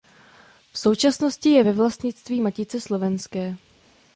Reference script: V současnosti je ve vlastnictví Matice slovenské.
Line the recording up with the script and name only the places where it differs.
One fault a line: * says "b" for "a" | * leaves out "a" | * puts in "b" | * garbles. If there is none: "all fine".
all fine